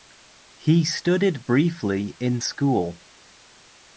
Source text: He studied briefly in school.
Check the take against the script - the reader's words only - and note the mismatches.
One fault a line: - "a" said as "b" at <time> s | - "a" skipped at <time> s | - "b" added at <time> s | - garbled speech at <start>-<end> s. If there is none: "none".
none